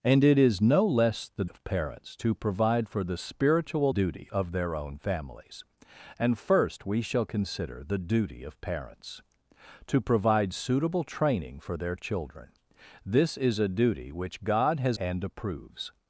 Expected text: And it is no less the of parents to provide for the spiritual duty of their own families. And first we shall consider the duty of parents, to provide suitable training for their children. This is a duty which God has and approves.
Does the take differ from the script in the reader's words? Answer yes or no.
no